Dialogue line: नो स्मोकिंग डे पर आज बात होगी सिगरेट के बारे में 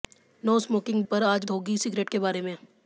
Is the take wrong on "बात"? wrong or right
wrong